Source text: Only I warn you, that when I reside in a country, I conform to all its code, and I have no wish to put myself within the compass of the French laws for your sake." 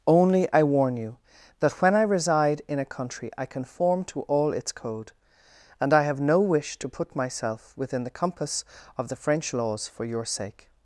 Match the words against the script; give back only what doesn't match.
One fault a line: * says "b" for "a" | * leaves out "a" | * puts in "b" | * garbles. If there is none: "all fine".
all fine